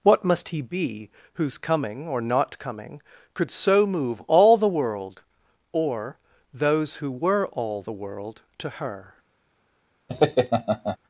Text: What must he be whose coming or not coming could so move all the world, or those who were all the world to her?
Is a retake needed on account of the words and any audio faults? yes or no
yes